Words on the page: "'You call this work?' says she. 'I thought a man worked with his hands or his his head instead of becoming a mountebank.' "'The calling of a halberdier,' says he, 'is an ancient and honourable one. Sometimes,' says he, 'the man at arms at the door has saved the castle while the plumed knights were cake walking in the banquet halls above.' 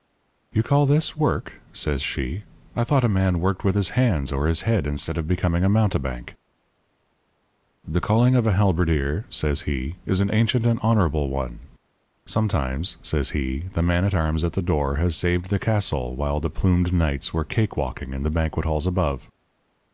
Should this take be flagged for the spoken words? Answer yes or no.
yes